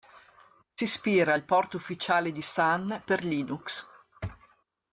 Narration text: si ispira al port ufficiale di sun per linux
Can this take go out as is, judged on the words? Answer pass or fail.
pass